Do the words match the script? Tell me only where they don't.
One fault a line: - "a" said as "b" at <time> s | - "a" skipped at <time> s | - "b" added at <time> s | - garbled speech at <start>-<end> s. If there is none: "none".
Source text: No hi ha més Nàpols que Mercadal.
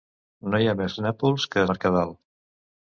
none